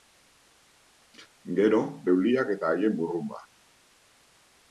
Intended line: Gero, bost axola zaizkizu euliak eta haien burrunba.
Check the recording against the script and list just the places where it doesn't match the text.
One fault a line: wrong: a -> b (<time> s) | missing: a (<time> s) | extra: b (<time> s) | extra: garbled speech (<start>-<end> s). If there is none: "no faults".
missing: bost axola zaizkizu (1.8 s)